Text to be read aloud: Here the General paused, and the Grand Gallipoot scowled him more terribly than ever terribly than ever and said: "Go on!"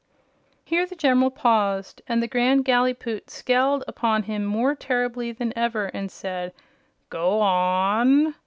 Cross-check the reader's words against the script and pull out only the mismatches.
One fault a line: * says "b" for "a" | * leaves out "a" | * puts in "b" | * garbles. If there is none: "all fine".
* puts in "upon"
* leaves out "terribly than ever"